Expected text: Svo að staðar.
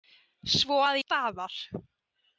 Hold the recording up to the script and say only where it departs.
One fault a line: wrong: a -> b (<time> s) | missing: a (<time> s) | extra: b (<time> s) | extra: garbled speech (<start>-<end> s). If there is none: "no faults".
no faults